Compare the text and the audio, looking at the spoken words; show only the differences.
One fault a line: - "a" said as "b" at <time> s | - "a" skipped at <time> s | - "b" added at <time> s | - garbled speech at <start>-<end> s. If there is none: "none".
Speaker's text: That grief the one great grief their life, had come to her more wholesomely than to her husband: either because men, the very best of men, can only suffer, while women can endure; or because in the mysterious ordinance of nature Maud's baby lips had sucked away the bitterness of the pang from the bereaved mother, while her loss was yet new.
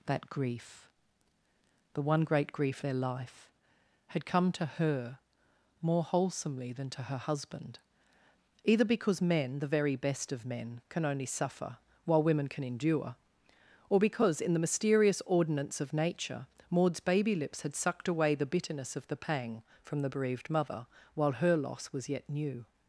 none